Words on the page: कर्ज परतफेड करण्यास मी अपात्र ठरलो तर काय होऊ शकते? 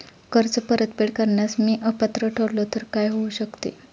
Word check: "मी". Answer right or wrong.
right